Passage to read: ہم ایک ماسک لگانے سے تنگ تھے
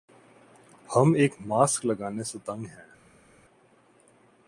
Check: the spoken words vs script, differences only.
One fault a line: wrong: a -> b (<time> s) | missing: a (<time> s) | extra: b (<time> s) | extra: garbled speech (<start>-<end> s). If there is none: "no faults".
wrong: تھے -> ہیں (2.7 s)